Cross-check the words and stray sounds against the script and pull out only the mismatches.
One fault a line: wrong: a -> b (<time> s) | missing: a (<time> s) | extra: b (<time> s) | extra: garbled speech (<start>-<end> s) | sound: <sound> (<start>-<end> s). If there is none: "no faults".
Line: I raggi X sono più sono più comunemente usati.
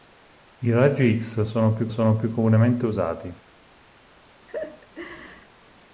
sound: laugh (4.5-5.5 s)